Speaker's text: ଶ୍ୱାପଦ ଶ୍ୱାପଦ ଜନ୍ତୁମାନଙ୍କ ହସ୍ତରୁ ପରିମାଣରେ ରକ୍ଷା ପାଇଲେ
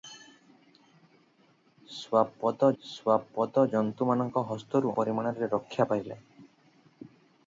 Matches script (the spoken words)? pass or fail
pass